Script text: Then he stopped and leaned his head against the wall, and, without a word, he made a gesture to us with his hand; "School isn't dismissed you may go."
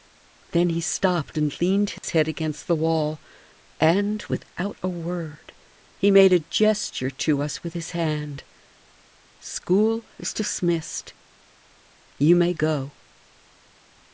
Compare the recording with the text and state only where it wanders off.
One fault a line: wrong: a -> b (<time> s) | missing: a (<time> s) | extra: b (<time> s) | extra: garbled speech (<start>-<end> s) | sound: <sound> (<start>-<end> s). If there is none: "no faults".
sound: dropout (2.0-2.0 s)
wrong: isn't -> is (10.2 s)